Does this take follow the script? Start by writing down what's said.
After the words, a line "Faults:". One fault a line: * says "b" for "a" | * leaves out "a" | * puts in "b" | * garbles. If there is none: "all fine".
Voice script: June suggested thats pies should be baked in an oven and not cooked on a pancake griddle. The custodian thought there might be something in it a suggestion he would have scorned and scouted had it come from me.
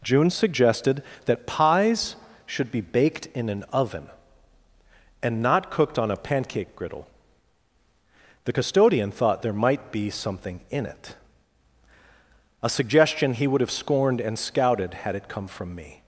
June suggested that pies should be baked in an oven and not cooked on a pancake griddle. The custodian thought there might be something in it a suggestion he would have scorned and scouted had it come from me.
Faults:
* says "that" for "thats"